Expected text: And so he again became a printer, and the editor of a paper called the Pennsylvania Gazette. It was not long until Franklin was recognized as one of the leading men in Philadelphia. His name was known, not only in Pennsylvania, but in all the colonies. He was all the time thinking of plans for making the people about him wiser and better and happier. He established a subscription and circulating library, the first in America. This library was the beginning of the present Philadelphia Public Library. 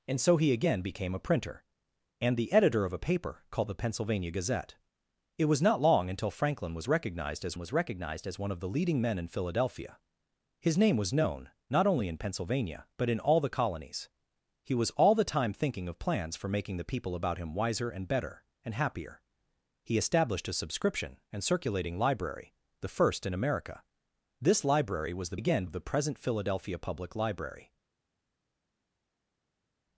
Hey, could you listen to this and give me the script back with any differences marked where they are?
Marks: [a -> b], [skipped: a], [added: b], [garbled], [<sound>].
And so he again became a printer, and the editor of a paper called the Pennsylvania Gazette. It was not long until Franklin was recognized as [added: was recognized as] one of the leading men in Philadelphia. His name was known, not only in Pennsylvania, but in all the colonies. He was all the time thinking of plans for making the people about him wiser and better and happier. He established a subscription and circulating library, the first in America. This library was the [beginning -> again] of the present Philadelphia Public Library.